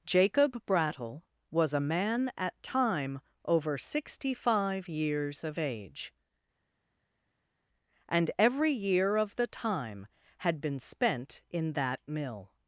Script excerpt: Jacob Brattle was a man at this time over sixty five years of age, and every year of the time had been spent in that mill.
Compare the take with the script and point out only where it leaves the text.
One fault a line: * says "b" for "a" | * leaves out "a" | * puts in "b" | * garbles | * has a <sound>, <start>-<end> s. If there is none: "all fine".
* leaves out "this"